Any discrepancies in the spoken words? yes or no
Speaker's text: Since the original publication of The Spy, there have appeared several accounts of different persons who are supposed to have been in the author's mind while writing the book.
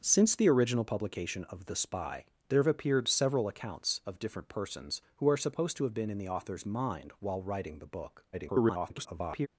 yes